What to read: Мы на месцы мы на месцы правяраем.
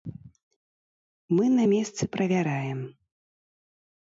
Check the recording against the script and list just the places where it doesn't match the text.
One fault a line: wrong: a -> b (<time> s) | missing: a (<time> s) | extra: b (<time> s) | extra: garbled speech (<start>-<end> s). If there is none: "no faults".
missing: мы на месцы (2.1 s)